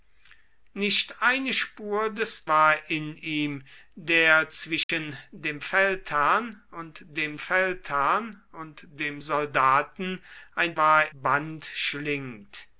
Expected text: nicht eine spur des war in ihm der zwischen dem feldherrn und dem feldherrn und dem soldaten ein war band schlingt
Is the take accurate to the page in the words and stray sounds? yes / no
no